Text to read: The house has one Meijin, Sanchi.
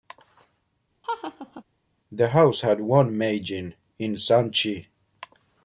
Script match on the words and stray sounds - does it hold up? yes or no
no